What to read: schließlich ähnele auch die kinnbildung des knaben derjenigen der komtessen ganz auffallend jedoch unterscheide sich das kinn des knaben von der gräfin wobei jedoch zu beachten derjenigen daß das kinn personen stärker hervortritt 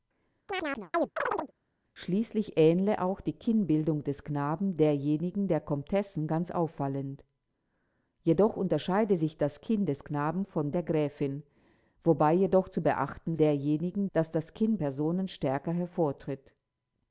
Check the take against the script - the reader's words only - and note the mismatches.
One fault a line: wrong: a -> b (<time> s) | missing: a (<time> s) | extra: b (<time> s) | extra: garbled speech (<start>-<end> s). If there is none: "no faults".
no faults